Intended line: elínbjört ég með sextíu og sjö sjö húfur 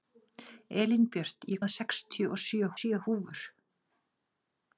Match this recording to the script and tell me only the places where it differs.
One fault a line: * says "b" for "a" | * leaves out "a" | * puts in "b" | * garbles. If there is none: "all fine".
all fine